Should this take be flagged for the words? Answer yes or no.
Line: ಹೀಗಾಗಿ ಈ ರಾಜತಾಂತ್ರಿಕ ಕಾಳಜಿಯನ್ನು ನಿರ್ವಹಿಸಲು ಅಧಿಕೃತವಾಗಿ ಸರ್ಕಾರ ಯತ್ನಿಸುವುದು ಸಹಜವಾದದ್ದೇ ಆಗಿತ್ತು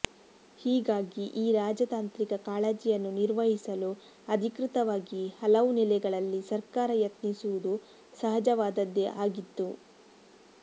yes